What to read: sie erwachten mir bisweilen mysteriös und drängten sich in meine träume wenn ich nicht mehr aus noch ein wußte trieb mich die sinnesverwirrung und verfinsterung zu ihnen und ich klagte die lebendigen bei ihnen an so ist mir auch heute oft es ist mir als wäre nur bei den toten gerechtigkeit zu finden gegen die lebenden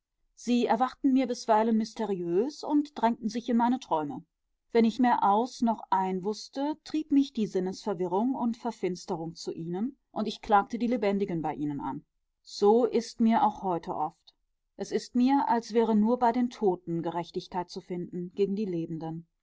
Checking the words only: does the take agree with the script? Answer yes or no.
no